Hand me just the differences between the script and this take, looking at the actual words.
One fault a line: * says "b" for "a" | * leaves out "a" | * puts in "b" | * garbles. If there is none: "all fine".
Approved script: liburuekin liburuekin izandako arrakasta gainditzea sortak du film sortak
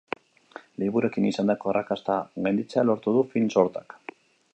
* leaves out "liburuekin"
* says "lortu" for "sortak"